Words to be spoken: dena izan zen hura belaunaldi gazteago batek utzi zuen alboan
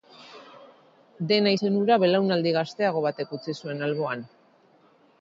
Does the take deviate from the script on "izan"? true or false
true